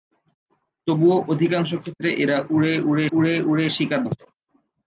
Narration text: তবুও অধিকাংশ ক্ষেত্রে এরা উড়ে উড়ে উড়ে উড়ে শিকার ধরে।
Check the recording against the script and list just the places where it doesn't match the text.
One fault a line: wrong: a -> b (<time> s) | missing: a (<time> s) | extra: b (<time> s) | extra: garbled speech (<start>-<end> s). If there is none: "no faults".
no faults